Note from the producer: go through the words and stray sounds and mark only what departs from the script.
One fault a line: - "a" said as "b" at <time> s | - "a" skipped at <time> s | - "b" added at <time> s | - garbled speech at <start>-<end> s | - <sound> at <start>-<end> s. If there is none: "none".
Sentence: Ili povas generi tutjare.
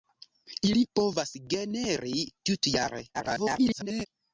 - garbled speech at 3.1-4.1 s